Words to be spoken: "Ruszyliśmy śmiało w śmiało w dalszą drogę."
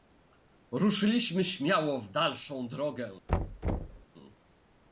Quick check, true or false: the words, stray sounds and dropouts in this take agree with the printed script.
false